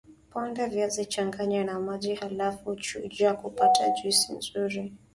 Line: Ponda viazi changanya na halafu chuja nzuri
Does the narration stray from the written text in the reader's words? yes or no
yes